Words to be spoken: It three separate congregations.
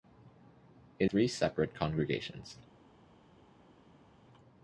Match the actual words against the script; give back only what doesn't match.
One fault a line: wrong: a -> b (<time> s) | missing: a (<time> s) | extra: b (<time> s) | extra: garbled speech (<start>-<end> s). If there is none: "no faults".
no faults